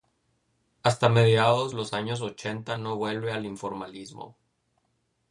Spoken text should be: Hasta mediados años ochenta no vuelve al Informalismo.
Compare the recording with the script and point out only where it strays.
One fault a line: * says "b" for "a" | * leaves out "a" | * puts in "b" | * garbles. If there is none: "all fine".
* puts in "los"